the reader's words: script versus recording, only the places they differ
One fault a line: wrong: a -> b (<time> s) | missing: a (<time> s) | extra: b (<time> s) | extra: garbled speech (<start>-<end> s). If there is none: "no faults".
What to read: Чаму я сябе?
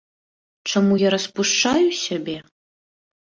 extra: распушчаю (1.1 s)